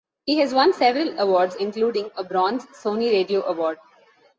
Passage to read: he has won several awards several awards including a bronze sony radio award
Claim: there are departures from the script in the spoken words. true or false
true